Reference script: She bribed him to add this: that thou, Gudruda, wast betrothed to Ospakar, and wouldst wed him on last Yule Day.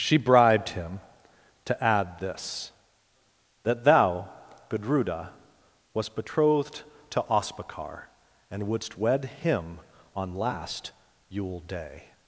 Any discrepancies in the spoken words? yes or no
no